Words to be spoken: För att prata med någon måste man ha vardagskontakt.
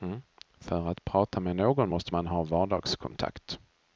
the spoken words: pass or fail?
pass